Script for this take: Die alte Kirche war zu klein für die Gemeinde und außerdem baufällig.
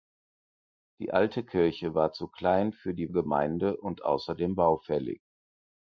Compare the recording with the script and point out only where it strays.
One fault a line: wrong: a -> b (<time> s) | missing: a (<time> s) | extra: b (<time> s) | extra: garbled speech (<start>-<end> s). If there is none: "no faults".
no faults